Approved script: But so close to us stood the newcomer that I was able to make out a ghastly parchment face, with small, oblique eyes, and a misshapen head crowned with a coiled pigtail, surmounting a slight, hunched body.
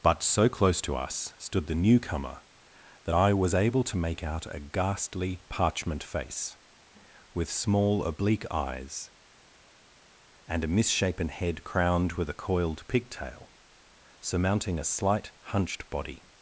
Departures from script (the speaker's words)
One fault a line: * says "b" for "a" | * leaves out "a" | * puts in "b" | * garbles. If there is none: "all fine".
all fine